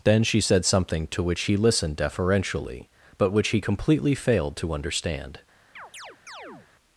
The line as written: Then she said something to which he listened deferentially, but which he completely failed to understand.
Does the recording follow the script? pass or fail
pass